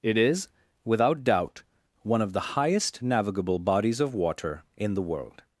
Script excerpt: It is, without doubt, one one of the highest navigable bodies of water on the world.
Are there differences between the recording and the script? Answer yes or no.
yes